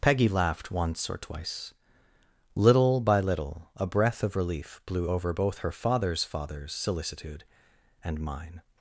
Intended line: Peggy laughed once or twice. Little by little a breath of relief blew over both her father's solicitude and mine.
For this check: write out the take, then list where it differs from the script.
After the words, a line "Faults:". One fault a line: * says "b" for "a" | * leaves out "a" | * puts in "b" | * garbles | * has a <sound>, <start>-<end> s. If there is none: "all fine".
Peggy laughed once or twice. Little by little a breath of relief blew over both her father's father's solicitude and mine.
Faults:
* puts in "father's"